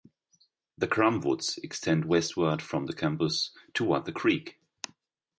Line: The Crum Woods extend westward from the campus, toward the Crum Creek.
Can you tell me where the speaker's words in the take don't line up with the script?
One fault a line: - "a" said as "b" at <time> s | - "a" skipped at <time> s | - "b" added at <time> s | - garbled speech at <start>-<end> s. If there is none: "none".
- "Crum" skipped at 4.1 s